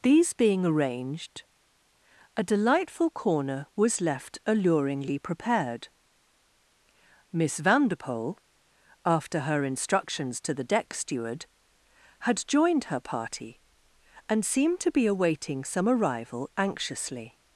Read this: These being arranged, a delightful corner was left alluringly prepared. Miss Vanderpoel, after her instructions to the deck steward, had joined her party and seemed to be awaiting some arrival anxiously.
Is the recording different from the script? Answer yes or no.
no